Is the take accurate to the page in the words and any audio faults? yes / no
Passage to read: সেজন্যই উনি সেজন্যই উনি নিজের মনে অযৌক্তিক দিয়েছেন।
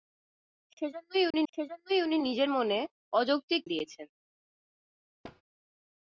no